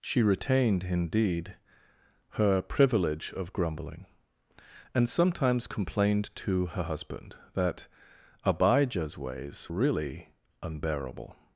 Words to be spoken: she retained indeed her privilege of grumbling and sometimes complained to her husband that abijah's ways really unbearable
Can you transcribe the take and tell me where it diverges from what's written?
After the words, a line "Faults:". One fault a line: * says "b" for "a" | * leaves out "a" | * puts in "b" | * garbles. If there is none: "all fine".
she retained indeed her privilege of grumbling and sometimes complained to her husband that abijah's ways really unbearable
Faults:
all fine